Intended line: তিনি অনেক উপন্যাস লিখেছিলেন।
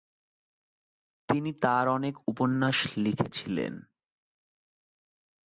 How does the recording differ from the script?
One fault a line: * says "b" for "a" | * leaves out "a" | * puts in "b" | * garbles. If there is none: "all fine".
* puts in "তার"